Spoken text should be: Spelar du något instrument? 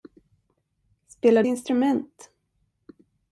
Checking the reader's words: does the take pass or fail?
fail